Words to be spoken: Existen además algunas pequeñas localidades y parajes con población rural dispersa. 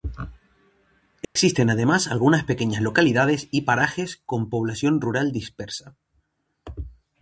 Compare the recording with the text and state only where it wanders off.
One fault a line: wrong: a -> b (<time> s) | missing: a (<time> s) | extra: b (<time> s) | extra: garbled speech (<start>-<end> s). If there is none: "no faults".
no faults